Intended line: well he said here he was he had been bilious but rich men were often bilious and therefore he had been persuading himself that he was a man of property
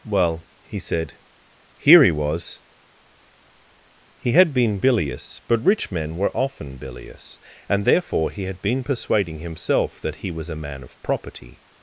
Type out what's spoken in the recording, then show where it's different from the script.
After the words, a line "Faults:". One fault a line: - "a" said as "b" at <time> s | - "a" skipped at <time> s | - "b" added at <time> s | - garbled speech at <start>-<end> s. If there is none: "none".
well he said here he was he had been bilious but rich men were often bilious and therefore he had been persuading himself that he was a man of property
Faults:
none